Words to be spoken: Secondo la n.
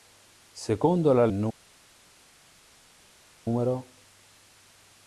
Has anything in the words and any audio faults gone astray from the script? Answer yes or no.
no